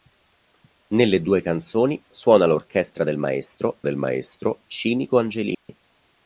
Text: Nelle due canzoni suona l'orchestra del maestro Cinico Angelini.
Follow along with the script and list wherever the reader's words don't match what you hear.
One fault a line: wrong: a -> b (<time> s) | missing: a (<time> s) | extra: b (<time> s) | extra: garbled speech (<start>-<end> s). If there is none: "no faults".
extra: del maestro (3.8 s)